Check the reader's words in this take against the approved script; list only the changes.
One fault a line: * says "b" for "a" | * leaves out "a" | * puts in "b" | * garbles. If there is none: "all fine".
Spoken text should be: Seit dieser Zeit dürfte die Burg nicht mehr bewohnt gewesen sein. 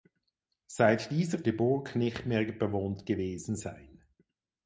* leaves out "Zeit dürfte"